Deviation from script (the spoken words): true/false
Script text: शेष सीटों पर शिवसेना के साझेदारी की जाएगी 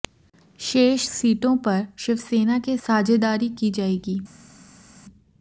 false